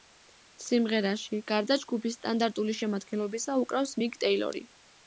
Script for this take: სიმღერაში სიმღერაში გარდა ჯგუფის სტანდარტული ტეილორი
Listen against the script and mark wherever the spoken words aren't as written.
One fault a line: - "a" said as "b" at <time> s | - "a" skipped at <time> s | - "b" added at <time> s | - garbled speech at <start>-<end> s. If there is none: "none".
- "სიმღერაში" skipped at 1.4 s
- "შემადგენლობისა უკრავს მიკ" added at 2.8 s